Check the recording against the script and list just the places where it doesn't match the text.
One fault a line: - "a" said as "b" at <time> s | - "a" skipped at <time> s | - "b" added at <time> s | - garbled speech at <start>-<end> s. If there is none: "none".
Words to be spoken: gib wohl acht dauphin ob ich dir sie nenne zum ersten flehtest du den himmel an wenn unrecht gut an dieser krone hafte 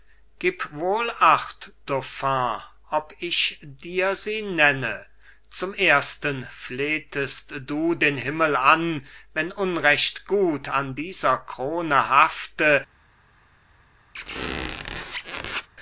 none